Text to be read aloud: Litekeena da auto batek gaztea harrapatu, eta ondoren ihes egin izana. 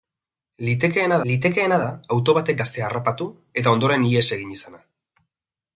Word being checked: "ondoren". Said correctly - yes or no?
yes